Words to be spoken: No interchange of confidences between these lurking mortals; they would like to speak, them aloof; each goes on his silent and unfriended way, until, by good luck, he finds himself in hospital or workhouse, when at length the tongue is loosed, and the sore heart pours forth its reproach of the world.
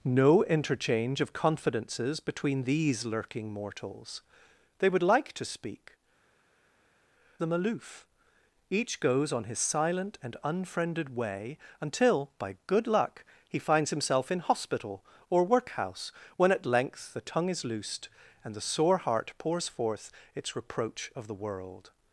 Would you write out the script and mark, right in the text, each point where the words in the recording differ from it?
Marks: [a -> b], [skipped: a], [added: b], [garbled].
No interchange of confidences between these lurking mortals; they would like to speak, them aloof; each goes on his silent and unfriended way, until, by good luck, he finds himself in hospital or workhouse, when at length the tongue is loosed, and the sore heart pours forth its reproach of the world.